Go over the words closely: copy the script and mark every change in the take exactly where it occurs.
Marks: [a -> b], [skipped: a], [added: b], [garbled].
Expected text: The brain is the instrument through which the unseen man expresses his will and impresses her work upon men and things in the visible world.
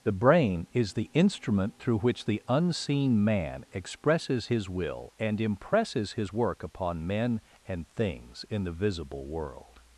The brain is the instrument through which the unseen man expresses his will and impresses [her -> his] work upon men and things in the visible world.